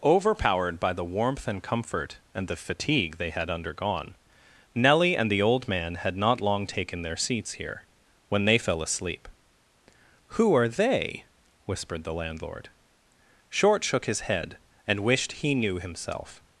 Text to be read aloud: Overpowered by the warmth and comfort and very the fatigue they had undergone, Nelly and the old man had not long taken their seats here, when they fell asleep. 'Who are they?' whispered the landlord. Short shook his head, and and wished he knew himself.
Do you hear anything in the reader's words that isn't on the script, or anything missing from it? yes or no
yes